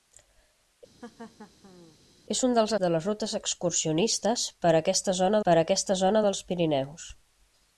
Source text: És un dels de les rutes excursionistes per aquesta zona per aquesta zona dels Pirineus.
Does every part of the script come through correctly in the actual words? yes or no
yes